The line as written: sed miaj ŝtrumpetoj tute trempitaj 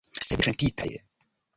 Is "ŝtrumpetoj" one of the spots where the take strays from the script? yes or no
yes